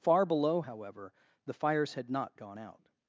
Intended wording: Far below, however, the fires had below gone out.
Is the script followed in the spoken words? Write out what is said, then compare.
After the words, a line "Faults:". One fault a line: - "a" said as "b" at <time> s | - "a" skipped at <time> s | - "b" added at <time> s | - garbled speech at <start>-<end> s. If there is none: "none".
Far below, however, the fires had not gone out.
Faults:
- "below" said as "not" at 2.1 s